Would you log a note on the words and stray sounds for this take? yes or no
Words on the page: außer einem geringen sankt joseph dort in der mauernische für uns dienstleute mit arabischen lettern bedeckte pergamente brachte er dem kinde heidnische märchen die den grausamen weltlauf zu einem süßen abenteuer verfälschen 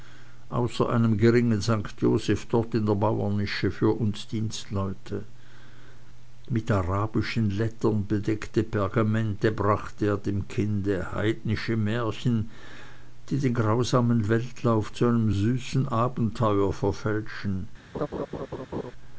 yes